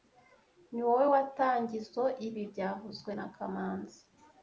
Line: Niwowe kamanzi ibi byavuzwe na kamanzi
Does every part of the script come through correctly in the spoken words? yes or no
no